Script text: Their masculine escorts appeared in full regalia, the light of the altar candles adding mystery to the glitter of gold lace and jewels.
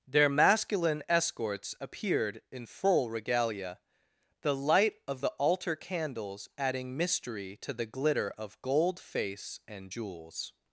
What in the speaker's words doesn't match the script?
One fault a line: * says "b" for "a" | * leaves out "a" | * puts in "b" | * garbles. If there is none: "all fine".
* says "face" for "lace"